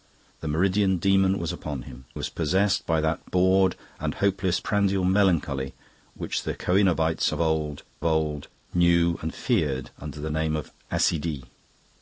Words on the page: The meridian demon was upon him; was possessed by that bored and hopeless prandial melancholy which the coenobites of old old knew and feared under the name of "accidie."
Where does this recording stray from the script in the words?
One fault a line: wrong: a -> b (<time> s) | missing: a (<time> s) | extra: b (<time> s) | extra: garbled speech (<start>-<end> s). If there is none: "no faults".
no faults